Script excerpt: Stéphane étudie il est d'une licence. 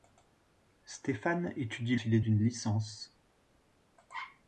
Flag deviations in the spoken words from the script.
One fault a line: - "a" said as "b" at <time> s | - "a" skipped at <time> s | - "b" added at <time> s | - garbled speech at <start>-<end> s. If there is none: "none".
none